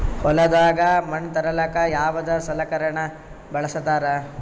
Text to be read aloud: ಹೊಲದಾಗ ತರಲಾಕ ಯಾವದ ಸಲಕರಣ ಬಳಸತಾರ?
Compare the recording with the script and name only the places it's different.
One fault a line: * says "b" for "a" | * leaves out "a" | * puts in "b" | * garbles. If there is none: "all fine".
* puts in "ಮಣ್"